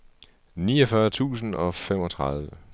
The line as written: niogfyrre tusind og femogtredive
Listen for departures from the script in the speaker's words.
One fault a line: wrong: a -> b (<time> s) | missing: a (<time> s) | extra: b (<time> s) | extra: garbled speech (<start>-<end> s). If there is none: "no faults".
no faults